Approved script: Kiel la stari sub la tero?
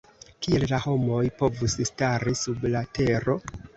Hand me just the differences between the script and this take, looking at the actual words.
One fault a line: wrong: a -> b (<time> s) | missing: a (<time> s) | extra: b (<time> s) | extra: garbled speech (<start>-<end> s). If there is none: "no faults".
extra: homoj povus (0.8 s)